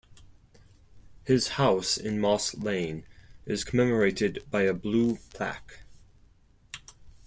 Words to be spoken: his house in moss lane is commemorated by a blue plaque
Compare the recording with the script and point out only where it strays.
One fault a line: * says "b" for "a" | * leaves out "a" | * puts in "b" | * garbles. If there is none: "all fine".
all fine